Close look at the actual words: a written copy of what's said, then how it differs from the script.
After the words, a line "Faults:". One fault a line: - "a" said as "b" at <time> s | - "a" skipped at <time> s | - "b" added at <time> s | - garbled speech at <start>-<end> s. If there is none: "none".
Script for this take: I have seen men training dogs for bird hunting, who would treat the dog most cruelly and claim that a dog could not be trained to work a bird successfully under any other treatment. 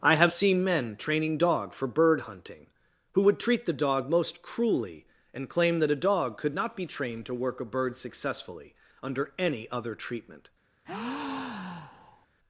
I have seen men training dog for bird hunting, who would treat the dog most cruelly and claim that a dog could not be trained to work a bird successfully under any other treatment.
Faults:
- "dogs" said as "dog" at 1.4 s